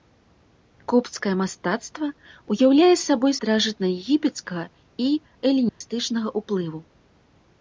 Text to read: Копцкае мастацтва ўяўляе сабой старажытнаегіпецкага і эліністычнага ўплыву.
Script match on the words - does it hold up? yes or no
yes